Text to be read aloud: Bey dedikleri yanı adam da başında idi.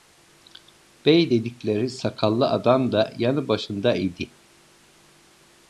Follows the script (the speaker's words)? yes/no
no